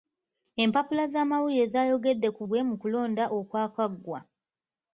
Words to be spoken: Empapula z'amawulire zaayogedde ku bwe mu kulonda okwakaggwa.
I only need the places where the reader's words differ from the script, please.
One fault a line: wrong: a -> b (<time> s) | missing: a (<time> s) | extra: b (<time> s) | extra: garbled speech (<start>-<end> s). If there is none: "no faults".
no faults